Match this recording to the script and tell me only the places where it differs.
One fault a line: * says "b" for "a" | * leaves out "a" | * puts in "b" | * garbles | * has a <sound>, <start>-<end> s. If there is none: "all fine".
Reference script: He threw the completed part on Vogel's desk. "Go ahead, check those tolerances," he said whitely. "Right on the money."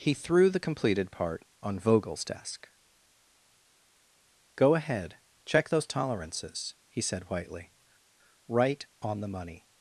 all fine